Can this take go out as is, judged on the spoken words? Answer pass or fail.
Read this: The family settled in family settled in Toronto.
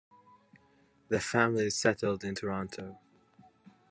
fail